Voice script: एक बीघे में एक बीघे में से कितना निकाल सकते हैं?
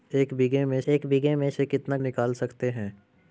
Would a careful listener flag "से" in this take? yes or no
no